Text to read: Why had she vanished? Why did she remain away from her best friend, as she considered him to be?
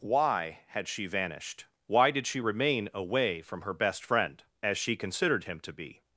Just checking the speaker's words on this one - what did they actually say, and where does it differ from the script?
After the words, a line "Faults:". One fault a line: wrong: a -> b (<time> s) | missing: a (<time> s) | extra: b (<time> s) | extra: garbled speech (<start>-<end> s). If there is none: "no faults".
Why had she vanished? Why did she remain away from her best friend, as she considered him to be?
Faults:
no faults